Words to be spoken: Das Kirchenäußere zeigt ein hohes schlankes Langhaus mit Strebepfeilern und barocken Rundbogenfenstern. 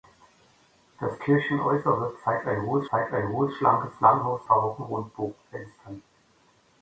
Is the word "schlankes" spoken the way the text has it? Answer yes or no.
no